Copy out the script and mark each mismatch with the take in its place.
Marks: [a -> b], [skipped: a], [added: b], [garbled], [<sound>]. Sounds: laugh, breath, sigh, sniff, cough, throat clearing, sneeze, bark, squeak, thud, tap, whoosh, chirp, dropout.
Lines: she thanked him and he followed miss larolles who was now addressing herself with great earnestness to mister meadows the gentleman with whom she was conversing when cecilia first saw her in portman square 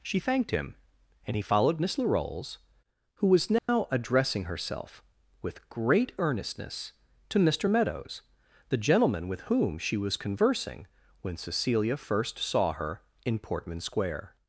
she thanked him and he followed miss larolles who was now [dropout] addressing herself with great earnestness to mister meadows the gentleman with whom she was conversing when cecilia first saw her in portman square